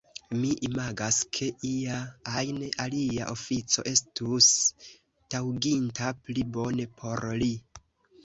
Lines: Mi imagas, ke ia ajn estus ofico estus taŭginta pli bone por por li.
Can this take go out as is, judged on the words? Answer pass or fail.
fail